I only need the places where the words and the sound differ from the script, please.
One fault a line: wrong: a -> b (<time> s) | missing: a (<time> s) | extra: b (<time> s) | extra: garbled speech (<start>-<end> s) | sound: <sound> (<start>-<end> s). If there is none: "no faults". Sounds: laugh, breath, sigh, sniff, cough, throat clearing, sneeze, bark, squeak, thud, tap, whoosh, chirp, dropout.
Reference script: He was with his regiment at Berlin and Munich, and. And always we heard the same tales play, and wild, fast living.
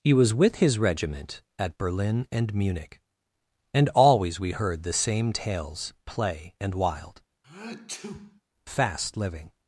missing: And (3.9 s)
sound: sneeze (7.4-8.4 s)